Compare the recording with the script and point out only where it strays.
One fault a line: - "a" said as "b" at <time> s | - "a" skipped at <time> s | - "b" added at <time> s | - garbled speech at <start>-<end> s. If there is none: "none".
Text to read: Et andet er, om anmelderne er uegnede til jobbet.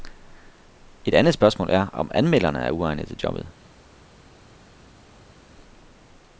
- "spørgsmål" added at 1.3 s